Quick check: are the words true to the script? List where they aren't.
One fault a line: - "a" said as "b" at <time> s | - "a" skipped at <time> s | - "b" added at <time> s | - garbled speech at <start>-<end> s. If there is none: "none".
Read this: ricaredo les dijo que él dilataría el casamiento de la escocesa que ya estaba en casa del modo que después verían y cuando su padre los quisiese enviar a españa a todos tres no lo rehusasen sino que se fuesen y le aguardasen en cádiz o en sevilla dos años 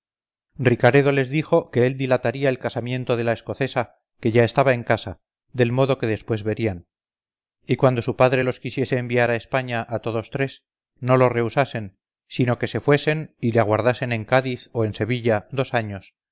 none